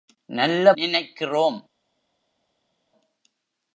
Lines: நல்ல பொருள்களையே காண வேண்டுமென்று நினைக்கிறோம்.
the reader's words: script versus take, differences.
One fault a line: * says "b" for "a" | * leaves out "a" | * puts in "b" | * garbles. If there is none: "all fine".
* leaves out "பொருள்களையே காண வேண்டுமென்று"